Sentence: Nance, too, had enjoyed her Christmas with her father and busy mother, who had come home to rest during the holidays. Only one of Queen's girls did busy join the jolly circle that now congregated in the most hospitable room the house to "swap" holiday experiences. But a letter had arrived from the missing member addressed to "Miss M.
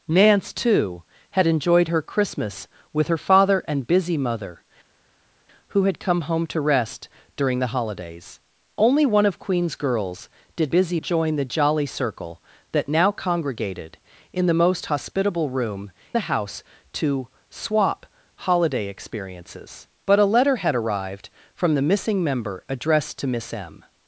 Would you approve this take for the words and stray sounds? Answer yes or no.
yes